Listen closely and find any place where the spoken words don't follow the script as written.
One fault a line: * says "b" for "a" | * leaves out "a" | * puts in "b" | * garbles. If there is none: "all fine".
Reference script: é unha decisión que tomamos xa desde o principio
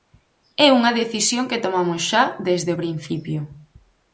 all fine